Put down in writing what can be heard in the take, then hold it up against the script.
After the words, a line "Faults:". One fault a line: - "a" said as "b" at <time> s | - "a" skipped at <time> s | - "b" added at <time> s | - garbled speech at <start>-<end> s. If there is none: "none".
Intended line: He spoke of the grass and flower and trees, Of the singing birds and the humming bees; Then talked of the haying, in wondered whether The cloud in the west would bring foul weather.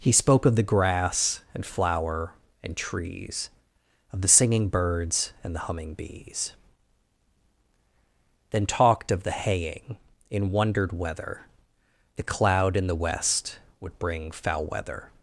He spoke of the grass and flower and trees, Of the singing birds and the humming bees; Then talked of the haying, in wondered whether The cloud in the west would bring foul weather.
Faults:
none